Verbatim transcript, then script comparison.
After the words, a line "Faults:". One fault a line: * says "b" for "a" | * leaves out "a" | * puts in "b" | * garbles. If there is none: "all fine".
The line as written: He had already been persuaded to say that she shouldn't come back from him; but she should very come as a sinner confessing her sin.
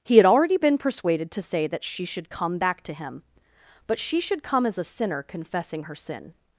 He had already been persuaded to say that she should come back to him; but she should come as a sinner confessing her sin.
Faults:
* says "should" for "shouldn't"
* says "to" for "from"
* leaves out "very"